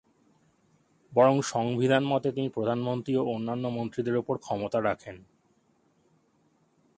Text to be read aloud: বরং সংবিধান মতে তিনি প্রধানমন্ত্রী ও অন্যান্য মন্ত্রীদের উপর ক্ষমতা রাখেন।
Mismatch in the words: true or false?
false